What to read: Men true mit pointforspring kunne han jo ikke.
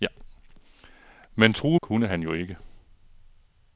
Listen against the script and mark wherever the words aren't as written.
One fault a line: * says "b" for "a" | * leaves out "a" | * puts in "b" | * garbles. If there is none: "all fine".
* leaves out "mit pointforspring"